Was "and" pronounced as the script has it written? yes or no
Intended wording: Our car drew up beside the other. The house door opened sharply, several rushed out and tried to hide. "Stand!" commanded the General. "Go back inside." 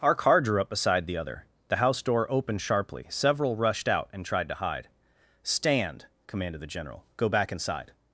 yes